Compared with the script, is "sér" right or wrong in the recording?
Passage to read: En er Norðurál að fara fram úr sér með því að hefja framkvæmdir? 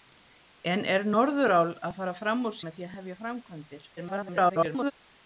wrong